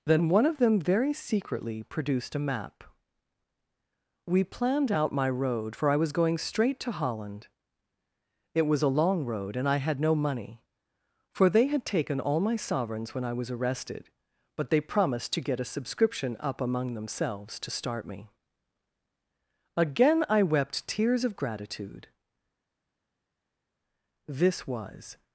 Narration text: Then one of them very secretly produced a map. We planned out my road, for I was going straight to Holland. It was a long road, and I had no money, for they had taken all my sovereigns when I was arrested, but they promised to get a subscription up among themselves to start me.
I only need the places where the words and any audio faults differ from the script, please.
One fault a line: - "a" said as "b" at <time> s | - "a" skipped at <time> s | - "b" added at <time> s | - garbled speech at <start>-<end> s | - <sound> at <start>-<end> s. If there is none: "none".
- "Again I wept tears of gratitude This was" added at 19.8 s